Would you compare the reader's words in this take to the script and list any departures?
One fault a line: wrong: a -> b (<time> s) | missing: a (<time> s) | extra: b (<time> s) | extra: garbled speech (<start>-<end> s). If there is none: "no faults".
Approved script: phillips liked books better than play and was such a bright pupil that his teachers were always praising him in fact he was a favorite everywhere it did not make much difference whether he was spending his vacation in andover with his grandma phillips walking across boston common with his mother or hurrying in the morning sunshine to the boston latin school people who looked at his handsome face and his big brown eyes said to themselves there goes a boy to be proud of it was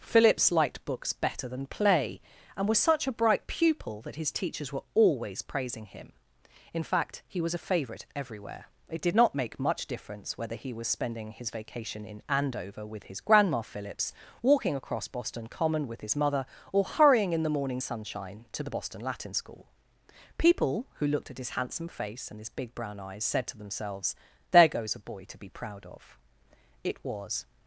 no faults